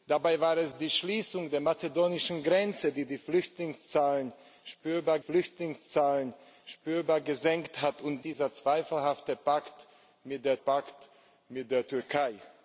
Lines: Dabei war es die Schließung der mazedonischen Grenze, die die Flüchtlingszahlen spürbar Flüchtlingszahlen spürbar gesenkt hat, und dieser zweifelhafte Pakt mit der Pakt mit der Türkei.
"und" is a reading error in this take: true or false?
false